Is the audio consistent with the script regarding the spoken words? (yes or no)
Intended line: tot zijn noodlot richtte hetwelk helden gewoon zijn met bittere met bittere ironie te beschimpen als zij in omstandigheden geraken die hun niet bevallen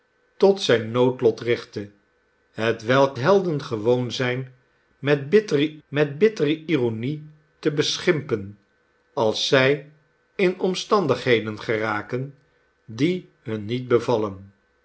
yes